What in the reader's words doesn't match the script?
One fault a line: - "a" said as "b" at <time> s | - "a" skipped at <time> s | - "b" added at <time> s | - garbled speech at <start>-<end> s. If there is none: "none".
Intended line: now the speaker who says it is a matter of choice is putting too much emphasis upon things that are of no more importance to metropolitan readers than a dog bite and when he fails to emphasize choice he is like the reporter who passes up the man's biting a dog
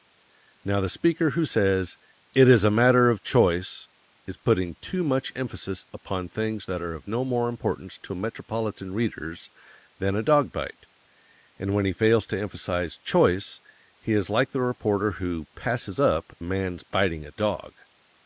- "the" skipped at 16.3 s